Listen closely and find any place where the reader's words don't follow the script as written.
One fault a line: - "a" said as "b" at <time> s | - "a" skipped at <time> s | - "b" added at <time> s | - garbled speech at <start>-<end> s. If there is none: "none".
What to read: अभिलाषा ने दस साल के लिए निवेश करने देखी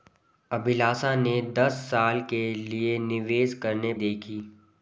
none